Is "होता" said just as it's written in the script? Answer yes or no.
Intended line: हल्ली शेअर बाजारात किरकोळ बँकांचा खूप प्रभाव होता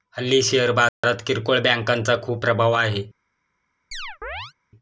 no